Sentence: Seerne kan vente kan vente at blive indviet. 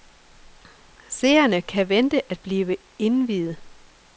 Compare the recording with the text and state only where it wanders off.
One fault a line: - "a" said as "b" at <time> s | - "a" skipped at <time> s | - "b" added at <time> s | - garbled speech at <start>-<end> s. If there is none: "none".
- "kan vente" skipped at 2.3 s